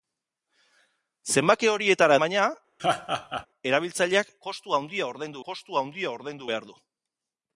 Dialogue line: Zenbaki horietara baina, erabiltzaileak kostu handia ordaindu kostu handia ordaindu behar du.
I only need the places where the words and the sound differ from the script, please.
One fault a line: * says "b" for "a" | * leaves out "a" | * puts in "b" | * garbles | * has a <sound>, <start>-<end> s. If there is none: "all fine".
* has a laugh, 2.8-3.5 s